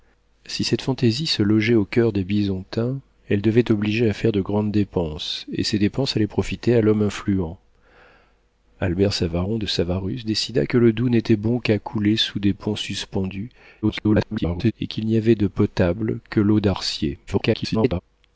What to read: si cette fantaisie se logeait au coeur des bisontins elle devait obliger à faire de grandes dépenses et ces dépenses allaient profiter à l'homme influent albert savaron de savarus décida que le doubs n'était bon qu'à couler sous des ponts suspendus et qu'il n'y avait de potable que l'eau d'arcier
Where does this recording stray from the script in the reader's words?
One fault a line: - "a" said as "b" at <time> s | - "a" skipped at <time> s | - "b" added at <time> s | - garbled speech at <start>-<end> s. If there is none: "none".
- garbled speech at 13.8-14.7 s
- garbled speech at 17.3-18.0 s